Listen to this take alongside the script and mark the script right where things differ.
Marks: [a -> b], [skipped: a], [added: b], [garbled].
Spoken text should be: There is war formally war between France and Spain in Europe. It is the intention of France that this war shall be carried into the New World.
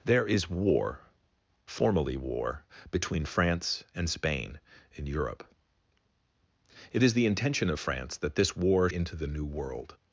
There is war formally war between France and Spain in Europe. It is the intention of France that this war [skipped: shall be carried] into the New World.